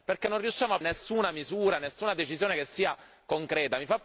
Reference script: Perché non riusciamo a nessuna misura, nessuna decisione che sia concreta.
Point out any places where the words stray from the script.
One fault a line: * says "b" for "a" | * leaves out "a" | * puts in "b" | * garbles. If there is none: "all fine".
all fine